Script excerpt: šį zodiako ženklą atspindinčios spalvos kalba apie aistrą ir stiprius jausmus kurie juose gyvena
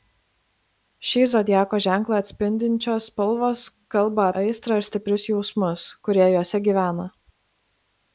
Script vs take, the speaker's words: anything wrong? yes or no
yes